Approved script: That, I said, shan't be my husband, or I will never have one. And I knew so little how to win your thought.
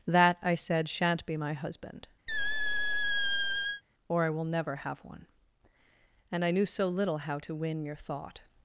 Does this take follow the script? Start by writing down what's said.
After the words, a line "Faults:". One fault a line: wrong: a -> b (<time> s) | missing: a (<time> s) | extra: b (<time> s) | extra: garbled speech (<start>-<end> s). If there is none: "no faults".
That, I said, shan't be my husband, or I will never have one. And I knew so little how to win your thought.
Faults:
no faults